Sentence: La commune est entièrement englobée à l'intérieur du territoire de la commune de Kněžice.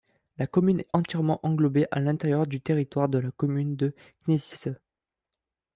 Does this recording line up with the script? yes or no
yes